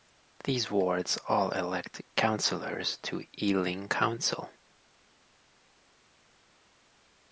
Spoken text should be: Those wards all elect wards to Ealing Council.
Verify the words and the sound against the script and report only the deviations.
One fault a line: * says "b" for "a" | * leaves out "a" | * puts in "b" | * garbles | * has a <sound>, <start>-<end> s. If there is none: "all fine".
* says "These" for "Those"
* says "councillors" for "wards"